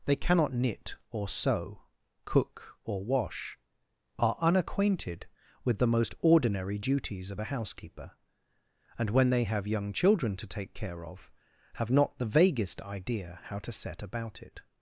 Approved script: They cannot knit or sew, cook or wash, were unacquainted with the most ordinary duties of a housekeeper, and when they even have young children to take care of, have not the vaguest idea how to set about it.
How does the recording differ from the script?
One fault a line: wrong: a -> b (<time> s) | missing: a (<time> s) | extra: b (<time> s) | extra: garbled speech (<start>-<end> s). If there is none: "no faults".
wrong: were -> are (4.2 s)
missing: even (9.4 s)